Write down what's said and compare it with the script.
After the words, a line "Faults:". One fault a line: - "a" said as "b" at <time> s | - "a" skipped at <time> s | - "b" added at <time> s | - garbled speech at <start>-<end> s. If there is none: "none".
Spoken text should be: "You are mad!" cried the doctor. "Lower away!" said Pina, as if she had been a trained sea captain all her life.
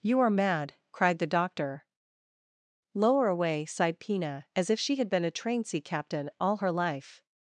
"You are mad!" cried the doctor. "Lower away!" sighed Pina, as if she had been a train sea captain all her life.
Faults:
- "said" said as "sighed" at 3.6 s
- "trained" said as "train" at 5.3 s